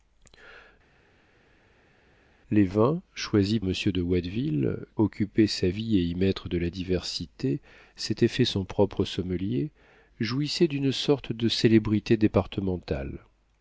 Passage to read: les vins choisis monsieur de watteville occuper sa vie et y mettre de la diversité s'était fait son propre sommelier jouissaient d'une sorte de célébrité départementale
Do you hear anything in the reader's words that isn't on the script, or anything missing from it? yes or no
no